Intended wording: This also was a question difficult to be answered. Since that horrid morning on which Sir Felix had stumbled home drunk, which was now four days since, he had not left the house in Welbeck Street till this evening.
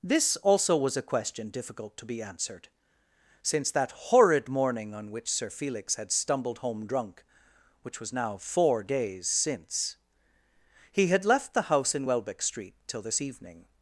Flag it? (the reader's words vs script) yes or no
yes